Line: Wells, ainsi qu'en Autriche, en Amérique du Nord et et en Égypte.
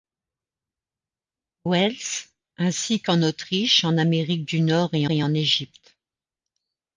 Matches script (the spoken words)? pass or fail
pass